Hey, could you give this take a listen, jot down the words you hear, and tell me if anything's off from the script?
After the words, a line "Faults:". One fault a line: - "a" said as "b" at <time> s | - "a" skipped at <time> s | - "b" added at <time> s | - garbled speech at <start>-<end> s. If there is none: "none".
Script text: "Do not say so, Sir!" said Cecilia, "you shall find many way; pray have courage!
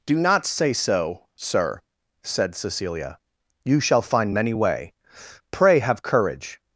"Do not say so, Sir!" said Cecilia, "you shall find many way; pray have courage!
Faults:
none